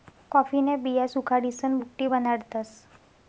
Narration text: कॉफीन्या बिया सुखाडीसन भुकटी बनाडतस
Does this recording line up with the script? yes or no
yes